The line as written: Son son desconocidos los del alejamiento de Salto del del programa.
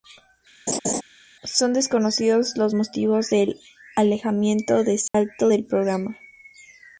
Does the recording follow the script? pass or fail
fail